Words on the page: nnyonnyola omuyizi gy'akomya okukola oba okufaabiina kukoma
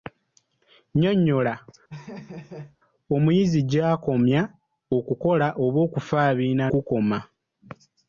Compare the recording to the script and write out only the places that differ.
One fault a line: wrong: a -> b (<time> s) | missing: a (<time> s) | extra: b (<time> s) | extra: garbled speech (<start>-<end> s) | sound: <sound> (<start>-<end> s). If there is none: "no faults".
sound: laugh (1.9-2.8 s)